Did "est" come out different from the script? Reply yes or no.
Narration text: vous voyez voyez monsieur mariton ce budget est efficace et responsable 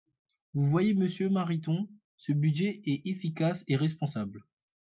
no